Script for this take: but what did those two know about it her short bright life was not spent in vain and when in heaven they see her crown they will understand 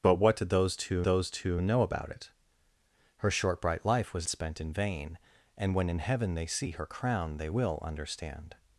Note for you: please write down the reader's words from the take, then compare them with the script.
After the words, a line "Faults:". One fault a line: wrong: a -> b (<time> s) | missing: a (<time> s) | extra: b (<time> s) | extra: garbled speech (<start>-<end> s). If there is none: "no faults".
but what did those two those two know about it her short bright life was spent in vain and when in heaven they see her crown they will understand
Faults:
extra: those two (1.0 s)
missing: not (4.3 s)